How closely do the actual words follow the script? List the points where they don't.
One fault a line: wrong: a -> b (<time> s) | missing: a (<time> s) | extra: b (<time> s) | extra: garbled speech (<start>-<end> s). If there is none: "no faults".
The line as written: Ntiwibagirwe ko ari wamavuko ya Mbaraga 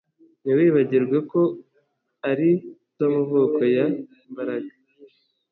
no faults